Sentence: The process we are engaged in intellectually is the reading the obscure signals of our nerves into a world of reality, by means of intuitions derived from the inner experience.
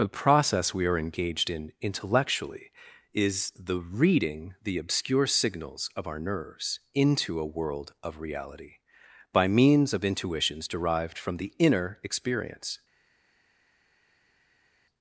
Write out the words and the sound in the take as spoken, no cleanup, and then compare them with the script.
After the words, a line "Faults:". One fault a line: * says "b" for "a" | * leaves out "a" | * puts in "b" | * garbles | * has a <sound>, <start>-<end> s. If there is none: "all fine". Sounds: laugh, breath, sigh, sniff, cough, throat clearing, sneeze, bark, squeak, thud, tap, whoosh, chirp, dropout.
The process we are engaged in intellectually is the reading the obscure signals of our nerves into a world of reality, by means of intuitions derived from the inner experience.
Faults:
all fine